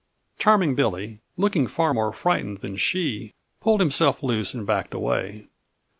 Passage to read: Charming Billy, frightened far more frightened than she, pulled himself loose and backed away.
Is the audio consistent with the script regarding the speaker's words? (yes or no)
no